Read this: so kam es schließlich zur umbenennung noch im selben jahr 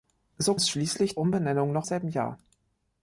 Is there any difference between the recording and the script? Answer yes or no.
yes